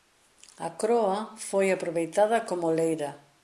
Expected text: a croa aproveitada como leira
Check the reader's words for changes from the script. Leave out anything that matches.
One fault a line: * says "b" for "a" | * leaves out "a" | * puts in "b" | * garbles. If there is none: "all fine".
* puts in "foi"